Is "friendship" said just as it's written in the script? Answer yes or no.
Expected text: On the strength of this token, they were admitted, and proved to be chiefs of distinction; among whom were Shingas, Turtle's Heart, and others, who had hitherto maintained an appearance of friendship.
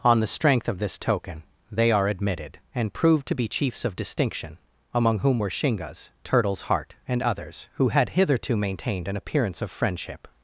yes